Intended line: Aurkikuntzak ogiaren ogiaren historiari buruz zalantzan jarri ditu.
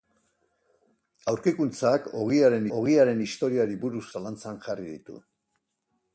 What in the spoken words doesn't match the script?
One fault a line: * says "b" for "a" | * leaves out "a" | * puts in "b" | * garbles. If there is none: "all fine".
all fine